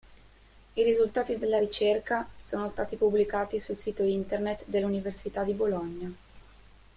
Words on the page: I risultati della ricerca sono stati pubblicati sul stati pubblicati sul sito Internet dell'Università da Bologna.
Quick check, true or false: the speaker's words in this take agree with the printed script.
false